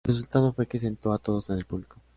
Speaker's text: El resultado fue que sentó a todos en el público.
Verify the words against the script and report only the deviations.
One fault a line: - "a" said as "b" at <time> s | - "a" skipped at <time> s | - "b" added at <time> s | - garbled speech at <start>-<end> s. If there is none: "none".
none